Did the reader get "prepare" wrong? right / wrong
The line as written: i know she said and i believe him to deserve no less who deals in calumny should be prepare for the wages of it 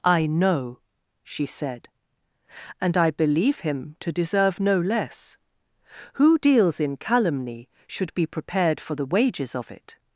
wrong